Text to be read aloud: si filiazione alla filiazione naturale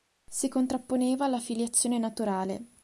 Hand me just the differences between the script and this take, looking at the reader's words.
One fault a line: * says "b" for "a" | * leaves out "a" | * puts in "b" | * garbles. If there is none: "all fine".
* says "contrapponeva" for "filiazione"